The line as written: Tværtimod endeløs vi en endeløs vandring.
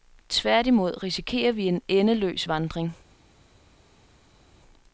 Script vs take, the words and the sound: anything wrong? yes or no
yes